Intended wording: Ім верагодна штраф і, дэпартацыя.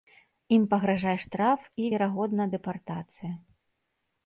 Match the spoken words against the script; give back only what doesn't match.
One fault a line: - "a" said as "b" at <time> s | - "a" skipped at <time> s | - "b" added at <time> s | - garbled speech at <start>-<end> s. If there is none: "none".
- "верагодна" said as "пагражае" at 0.7 s
- "верагодна" added at 1.9 s